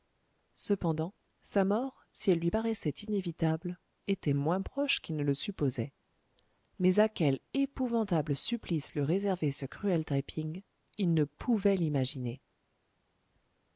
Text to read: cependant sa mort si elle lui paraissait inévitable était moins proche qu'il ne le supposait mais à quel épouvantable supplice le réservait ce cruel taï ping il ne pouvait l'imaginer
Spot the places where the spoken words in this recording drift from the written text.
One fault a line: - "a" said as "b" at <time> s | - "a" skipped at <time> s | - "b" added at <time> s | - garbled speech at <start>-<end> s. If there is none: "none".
none